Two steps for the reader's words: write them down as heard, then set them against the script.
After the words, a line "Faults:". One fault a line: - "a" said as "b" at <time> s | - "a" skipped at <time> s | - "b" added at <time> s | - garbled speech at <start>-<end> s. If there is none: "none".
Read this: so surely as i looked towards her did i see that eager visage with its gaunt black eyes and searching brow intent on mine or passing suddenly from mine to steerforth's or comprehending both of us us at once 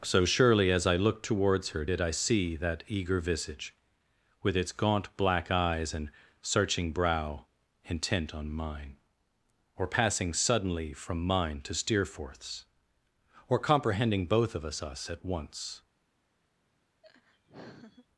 so surely as i looked towards her did i see that eager visage with its gaunt black eyes and searching brow intent on mine or passing suddenly from mine to steerforth's or comprehending both of us us at once
Faults:
none